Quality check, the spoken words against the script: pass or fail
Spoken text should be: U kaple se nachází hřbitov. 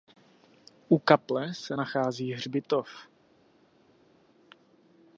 pass